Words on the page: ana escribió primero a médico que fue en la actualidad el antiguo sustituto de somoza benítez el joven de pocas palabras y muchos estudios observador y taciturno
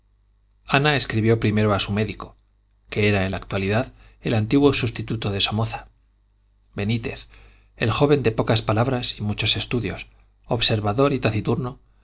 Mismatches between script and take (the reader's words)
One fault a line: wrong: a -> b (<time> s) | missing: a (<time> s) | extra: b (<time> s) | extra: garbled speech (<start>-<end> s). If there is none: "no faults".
extra: su (1.8 s)
wrong: fue -> era (3.1 s)